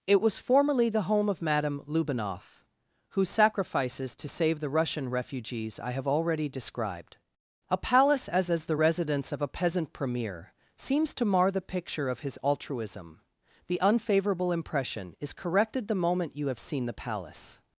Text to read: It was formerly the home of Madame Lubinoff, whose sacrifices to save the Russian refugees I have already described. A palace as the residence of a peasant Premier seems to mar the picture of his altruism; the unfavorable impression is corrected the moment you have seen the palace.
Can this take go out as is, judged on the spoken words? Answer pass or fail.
fail